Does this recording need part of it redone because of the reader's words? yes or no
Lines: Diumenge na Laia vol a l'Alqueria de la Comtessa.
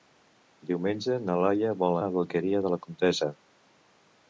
no